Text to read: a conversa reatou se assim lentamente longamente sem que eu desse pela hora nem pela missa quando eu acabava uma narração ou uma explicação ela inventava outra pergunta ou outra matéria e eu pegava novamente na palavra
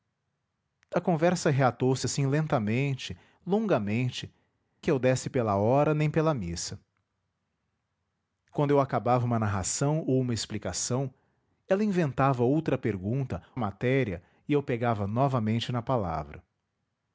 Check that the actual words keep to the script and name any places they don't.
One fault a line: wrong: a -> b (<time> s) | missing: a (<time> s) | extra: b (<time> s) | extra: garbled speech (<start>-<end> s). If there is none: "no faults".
missing: sem (4.3 s)
missing: ou outra (13.4 s)